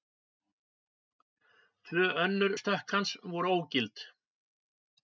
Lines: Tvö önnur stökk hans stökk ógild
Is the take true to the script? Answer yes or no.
no